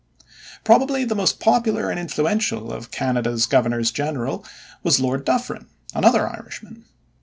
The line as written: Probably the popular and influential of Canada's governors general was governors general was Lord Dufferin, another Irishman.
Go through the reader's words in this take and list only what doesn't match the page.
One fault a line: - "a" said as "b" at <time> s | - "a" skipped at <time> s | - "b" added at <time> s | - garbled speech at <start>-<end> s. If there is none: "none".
- "most" added at 1.1 s
- "governors general was" skipped at 5.0 s